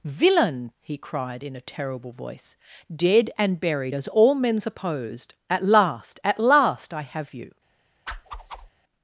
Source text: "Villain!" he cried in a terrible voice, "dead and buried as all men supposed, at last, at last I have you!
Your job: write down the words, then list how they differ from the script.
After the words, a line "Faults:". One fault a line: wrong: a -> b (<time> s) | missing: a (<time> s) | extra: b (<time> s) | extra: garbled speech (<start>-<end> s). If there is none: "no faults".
"Villain!" he cried in a terrible voice, "dead and buried as all men supposed, at last, at last I have you!
Faults:
no faults